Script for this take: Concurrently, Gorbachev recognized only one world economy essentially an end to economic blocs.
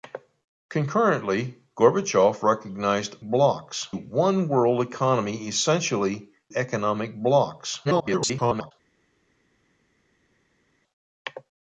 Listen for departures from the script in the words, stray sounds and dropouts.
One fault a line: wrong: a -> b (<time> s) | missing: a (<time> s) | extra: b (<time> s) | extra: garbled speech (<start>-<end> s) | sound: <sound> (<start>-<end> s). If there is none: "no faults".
wrong: only -> blocs (3.2 s)
missing: an end to (6.2 s)
extra: garbled speech (7.8-8.7 s)